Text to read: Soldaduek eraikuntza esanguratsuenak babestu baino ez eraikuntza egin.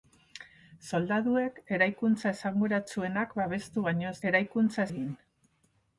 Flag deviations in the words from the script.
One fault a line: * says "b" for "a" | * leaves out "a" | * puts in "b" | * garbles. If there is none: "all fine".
all fine